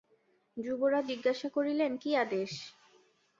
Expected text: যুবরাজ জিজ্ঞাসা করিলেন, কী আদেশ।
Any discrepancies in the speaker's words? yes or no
no